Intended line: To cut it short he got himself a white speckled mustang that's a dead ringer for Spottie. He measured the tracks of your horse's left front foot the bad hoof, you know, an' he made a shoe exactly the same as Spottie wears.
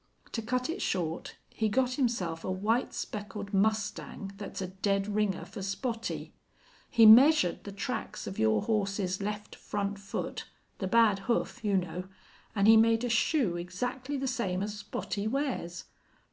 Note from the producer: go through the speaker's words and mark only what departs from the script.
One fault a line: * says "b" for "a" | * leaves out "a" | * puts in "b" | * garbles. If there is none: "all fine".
all fine